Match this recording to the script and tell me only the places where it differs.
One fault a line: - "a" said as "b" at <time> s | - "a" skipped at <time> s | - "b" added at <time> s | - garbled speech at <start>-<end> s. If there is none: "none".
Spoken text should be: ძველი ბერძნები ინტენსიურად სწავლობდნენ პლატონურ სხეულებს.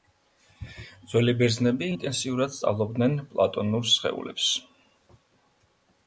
none